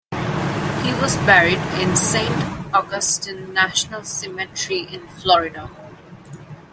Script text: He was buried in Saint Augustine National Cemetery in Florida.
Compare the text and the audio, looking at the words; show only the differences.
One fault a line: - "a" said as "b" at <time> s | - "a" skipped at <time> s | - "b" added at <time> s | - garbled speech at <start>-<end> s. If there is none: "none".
none